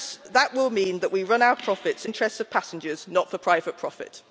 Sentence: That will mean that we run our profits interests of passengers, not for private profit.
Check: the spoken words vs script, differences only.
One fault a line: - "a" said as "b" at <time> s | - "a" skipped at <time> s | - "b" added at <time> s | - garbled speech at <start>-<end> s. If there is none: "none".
none